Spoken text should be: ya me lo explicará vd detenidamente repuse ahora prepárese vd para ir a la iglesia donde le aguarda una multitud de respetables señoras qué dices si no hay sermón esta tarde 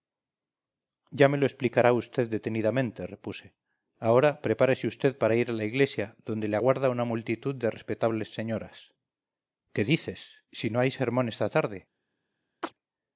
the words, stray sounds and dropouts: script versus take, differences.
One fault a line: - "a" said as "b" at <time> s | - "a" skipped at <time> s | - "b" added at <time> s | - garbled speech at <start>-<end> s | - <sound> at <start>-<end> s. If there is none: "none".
- chirp at 12.6-12.7 s